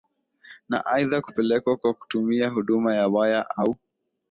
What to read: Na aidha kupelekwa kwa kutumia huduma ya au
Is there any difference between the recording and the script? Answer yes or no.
yes